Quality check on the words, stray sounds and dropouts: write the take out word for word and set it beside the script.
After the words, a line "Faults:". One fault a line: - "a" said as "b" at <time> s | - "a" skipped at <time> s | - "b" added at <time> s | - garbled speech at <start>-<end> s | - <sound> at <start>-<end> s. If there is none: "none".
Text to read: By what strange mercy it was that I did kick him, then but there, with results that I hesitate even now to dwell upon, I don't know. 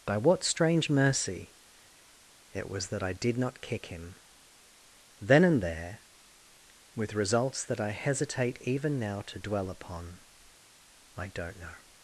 By what strange mercy it was that I did not kick him, then and there, with results that I hesitate even now to dwell upon, I don't know.
Faults:
- "not" added at 3.4 s
- "but" said as "and" at 5.4 s